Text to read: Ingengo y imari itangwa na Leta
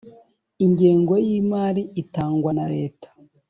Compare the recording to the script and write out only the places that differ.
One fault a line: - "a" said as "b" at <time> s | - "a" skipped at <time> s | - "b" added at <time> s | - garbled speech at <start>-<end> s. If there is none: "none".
none